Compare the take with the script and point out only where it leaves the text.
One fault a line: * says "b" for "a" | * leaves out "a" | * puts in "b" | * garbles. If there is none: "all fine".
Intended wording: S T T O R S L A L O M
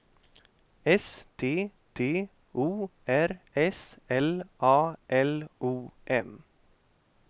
all fine